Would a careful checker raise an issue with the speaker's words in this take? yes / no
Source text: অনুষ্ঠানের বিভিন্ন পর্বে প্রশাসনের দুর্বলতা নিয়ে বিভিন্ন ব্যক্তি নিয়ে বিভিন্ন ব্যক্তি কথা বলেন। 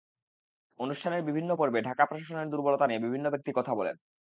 yes